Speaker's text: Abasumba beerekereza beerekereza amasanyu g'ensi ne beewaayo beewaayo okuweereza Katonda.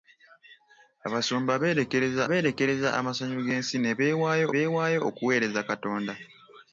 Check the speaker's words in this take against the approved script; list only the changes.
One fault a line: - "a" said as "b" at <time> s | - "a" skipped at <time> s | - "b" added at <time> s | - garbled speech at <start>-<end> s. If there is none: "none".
none